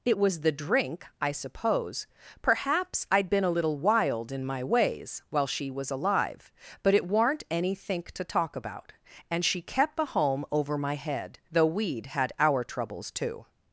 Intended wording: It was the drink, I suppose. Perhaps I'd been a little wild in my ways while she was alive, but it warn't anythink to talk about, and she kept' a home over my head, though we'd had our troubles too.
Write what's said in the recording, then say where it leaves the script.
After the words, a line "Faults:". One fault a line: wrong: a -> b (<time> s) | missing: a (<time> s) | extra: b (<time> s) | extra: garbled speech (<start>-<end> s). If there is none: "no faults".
It was the drink, I suppose. Perhaps I'd been a little wild in my ways while she was alive, but it warn't anythink to talk about, and she kept' a home over my head, though we'd had our troubles too.
Faults:
no faults